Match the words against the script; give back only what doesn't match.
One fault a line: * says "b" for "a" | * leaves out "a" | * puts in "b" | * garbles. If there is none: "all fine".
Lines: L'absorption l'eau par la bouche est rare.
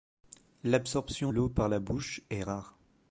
all fine